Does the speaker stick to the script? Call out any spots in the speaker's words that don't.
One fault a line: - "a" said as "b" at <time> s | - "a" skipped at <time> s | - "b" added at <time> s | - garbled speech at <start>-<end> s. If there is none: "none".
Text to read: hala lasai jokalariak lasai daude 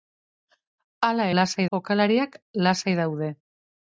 none